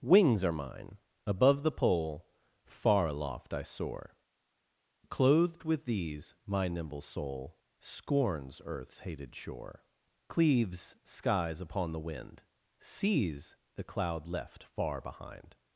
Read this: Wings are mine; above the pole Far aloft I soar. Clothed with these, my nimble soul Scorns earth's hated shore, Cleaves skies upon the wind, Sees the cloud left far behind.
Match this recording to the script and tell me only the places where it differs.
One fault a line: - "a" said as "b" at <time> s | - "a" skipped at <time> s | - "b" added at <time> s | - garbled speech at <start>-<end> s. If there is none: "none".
none